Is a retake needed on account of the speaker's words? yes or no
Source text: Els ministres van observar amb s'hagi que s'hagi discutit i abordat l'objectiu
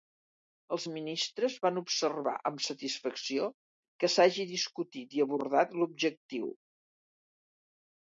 yes